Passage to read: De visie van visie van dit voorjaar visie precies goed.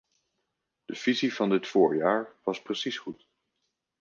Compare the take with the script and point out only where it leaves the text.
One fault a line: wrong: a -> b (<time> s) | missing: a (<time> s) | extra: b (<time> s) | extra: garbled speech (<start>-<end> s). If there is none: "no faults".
missing: visie van (1.5 s)
wrong: visie -> was (2.4 s)